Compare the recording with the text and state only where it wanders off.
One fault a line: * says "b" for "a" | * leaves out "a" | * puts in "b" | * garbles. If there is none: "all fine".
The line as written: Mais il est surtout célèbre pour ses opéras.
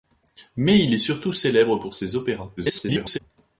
* garbles